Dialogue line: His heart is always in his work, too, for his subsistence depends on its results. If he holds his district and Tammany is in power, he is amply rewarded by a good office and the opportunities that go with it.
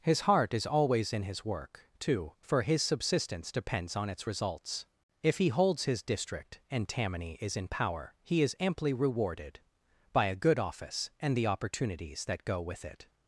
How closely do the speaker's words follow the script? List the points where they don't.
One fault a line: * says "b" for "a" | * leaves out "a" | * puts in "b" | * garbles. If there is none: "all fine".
all fine